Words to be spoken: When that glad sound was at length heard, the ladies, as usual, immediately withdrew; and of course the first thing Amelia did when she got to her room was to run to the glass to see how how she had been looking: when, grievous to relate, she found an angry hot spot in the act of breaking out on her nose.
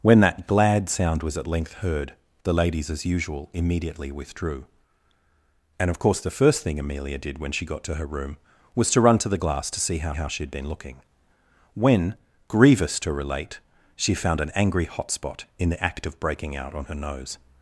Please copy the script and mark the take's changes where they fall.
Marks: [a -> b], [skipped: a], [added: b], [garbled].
When that glad sound was at length heard, the ladies, as usual, immediately withdrew; and of course the first thing Amelia did when she got to her room was to run to the glass to see how how she had been looking: when, grievous to relate, she found an angry hot spot in the act of breaking out on her nose.